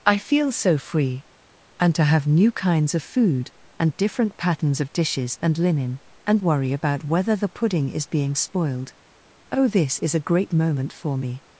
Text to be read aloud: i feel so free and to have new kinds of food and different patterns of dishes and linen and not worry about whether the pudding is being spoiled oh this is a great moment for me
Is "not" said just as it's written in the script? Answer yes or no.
no